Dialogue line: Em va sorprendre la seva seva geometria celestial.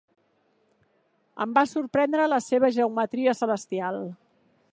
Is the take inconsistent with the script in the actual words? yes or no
yes